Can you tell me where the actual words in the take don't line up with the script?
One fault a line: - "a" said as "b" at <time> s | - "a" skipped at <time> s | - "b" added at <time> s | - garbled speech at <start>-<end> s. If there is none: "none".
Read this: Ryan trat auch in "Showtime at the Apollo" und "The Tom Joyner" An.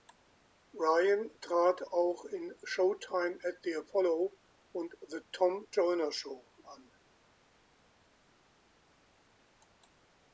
- "Show" added at 6.1 s